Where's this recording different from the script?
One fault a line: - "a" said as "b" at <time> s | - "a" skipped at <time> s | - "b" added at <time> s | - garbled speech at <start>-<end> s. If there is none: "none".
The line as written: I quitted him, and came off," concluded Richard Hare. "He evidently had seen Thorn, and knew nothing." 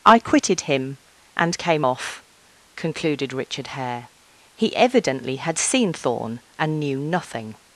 none